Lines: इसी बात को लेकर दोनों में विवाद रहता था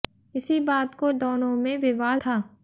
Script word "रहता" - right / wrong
wrong